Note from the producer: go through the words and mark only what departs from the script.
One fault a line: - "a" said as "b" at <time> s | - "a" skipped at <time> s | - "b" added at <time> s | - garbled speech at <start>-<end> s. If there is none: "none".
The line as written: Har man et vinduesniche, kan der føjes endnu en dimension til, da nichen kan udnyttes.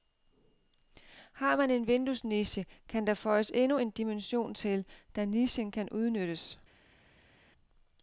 - "et" said as "en" at 1.7 s